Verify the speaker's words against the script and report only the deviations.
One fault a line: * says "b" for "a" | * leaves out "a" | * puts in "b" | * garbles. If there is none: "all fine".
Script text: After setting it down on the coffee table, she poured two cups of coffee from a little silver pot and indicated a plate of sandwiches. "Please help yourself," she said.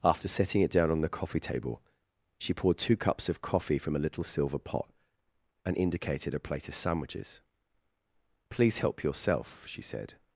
all fine